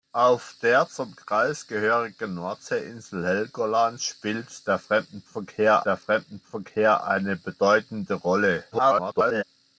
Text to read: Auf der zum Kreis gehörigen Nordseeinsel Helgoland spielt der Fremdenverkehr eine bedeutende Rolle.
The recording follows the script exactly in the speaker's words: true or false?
false